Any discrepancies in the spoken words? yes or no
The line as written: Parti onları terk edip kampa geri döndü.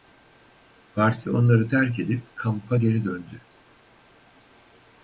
no